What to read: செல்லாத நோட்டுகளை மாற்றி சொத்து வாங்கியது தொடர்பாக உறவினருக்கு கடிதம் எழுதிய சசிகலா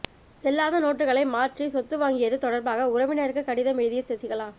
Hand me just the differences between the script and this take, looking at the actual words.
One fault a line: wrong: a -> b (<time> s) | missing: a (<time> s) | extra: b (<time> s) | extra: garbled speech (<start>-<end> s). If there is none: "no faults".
no faults